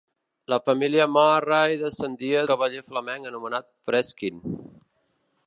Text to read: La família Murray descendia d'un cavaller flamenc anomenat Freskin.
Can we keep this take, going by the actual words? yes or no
no